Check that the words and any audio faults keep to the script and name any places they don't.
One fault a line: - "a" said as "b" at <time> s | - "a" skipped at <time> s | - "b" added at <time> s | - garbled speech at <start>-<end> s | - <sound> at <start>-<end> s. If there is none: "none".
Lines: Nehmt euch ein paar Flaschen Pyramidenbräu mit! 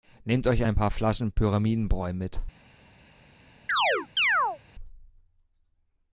- chirp at 3.7-4.6 s